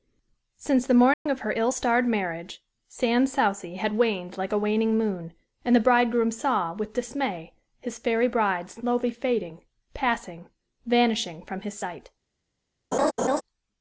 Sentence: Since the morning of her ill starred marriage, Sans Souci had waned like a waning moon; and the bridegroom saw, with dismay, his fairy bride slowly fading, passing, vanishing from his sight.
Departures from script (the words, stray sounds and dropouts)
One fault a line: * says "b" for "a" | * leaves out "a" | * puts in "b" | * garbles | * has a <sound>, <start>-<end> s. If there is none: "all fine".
* has a dropout, 1.1-1.3 s
* has a laugh, 12.9-13.4 s